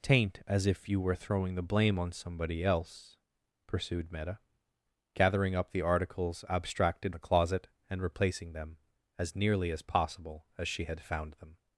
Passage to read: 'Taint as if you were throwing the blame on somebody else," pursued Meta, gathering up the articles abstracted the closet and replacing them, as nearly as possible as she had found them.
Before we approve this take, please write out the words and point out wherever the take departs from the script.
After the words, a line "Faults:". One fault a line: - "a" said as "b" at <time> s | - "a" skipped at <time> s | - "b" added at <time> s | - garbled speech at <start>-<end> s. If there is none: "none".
'Taint as if you were throwing the blame on somebody else," pursued Meta, gathering up the articles abstracted the closet and replacing them, as nearly as possible as she had found them.
Faults:
none